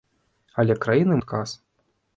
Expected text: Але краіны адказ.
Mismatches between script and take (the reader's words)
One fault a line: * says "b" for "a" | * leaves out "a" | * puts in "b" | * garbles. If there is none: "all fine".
all fine